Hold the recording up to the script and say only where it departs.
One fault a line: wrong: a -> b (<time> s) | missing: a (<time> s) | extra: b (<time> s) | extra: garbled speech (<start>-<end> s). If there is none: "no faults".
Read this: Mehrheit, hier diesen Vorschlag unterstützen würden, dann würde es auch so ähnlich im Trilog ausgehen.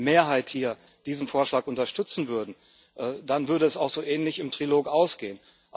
no faults